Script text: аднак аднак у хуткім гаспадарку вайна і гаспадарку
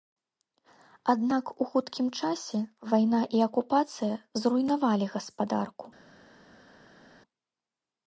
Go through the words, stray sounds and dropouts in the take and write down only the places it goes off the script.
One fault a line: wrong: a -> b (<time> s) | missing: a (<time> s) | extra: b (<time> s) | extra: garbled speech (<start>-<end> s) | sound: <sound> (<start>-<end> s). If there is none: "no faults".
missing: аднак (1.4 s)
wrong: гаспадарку -> часе (2.2 s)
extra: акупацыя зруйнавалі (3.5 s)